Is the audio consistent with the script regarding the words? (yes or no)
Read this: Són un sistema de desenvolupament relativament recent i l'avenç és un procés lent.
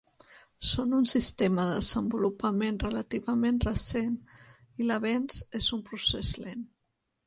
yes